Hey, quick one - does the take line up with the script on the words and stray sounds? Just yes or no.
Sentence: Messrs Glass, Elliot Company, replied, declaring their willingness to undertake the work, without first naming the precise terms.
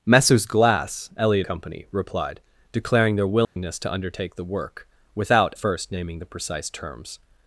no